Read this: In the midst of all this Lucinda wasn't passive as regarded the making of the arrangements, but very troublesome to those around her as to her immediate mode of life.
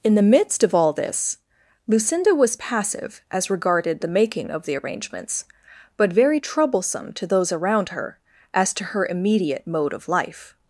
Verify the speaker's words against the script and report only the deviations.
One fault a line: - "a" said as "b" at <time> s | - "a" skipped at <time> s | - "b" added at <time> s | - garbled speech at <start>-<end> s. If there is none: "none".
- "wasn't" said as "was" at 2.3 s